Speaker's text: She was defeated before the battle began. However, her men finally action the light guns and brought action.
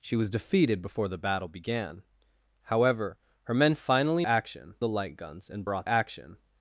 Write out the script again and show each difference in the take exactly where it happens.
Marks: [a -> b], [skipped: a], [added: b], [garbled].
She was defeated before the battle began. However, her men finally action the light guns and brought action.